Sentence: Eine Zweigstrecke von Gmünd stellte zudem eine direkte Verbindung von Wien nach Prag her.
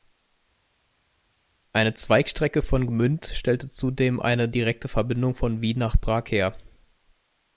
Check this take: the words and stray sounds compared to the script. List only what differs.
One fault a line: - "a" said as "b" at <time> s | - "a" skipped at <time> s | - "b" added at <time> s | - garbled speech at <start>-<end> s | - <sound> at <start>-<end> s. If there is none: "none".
none